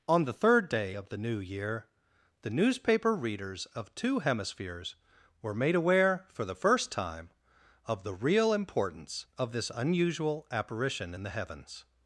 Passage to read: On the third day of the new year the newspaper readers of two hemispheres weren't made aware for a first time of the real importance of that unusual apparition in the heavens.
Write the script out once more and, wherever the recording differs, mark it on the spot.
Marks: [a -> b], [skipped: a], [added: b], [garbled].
On the third day of the new year the newspaper readers of two hemispheres [weren't -> were] made aware for [a -> the] first time of the real importance of [that -> this] unusual apparition in the heavens.